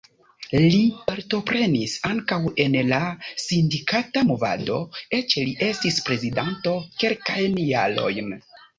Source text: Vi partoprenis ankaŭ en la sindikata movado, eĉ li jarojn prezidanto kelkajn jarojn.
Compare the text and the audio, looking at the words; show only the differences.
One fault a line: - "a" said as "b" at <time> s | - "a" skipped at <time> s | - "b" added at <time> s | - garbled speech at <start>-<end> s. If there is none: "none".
- "Vi" said as "Li" at 0.6 s
- "jarojn" said as "estis" at 5.7 s